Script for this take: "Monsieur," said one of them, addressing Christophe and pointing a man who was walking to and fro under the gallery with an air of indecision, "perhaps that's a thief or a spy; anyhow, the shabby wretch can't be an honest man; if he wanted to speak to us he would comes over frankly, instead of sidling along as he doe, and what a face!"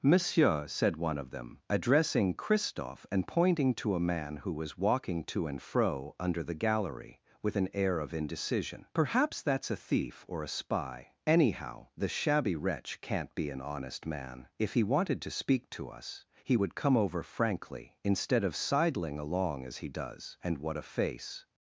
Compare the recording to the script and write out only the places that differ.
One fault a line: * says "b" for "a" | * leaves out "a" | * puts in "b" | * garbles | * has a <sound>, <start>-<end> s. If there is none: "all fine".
* puts in "to"
* says "come" for "comes"
* says "does" for "doe"